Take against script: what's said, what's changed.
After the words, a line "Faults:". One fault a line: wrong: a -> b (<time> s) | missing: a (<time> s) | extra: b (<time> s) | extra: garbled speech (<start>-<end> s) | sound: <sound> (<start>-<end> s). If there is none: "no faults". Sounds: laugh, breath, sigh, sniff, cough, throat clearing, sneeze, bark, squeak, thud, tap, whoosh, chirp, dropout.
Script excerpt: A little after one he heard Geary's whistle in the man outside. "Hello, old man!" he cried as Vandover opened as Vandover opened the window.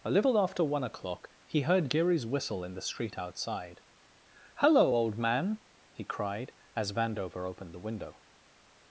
A little after one o'clock he heard Geary's whistle in the street outside. "Hello, old man!" he cried as Vandover opened the window.
Faults:
extra: o'clock (0.8 s)
wrong: man -> street (2.8 s)
missing: as Vandover opened (7.7 s)